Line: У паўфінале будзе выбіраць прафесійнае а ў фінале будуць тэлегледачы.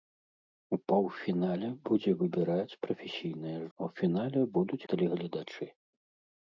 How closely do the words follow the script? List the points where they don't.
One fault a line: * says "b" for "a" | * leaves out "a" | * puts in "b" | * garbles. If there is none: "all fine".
all fine